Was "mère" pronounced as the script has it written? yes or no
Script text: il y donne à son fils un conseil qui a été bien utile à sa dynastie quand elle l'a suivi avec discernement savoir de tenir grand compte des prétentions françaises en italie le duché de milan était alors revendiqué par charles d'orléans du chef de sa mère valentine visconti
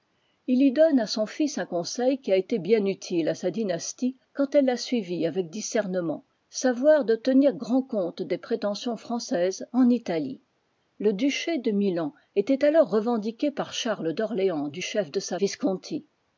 no